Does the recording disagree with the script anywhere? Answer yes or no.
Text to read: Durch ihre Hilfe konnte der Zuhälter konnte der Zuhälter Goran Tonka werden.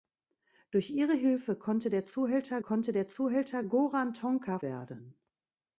no